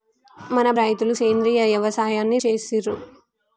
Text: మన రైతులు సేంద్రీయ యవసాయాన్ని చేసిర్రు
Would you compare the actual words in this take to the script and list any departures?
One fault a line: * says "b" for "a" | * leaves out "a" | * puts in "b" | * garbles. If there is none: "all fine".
all fine